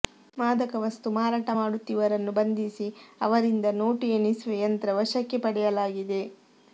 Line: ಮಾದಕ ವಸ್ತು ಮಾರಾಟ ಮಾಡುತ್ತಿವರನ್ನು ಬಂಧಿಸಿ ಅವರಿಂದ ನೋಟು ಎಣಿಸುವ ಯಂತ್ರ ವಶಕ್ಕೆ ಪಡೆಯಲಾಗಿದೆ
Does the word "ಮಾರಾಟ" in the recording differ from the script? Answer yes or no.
no